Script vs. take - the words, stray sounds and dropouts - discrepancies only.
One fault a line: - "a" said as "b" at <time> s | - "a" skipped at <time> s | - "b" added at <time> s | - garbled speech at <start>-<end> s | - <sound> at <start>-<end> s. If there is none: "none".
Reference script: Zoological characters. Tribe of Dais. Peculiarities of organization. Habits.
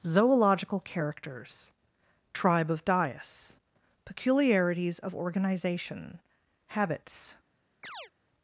- chirp at 7.8-8.1 s